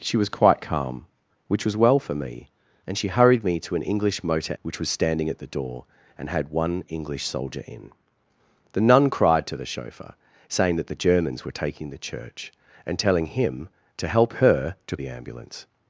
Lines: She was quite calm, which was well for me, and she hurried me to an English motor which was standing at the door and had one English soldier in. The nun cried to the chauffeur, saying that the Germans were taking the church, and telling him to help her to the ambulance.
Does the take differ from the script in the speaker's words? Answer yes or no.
no